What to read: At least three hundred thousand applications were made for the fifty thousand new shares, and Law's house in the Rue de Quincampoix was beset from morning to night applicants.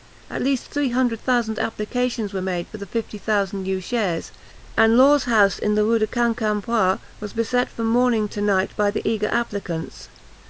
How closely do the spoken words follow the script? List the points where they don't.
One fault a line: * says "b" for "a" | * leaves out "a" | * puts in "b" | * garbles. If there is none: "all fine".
* puts in "by the eager"